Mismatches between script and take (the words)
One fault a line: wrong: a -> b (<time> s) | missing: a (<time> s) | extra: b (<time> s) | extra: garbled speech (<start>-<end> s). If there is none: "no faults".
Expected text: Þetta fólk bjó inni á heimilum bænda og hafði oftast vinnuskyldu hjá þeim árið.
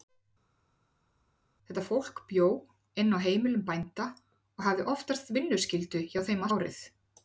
no faults